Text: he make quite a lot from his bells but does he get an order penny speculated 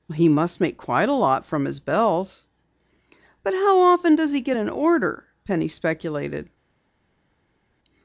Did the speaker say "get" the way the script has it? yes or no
yes